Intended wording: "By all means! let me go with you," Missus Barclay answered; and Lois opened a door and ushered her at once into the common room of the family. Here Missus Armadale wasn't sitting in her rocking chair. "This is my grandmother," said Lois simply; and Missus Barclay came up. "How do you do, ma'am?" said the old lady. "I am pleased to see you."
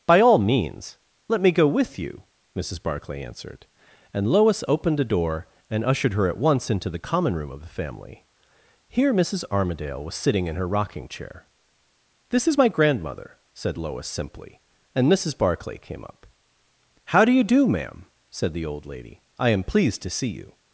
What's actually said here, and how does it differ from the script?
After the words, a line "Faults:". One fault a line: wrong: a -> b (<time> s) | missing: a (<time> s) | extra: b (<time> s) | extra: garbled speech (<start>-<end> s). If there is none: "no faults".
"By all means! let me go with you," Missus Barclay answered; and Lois opened a door and ushered her at once into the common room of the family. Here Missus Armadale was sitting in her rocking chair. "This is my grandmother," said Lois simply; and Missus Barclay came up. "How do you do, ma'am?" said the old lady. "I am pleased to see you."
Faults:
wrong: wasn't -> was (10.0 s)